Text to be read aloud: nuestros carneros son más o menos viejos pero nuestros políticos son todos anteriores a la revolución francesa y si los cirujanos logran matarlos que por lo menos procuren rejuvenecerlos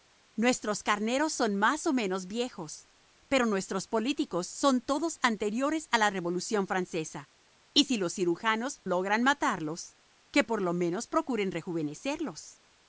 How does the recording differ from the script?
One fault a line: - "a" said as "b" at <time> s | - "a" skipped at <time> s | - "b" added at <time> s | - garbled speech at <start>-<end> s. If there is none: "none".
none